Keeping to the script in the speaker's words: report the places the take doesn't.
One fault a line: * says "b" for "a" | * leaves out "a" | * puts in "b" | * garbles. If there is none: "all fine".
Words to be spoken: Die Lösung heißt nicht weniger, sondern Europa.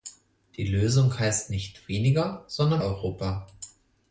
all fine